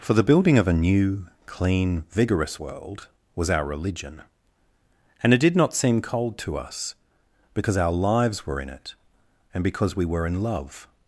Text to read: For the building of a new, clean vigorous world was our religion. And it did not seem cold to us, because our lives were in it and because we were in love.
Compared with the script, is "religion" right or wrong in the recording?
right